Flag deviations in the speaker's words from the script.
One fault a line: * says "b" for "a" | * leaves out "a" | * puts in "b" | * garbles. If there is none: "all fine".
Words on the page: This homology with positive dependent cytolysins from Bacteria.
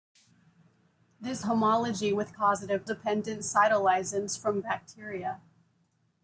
all fine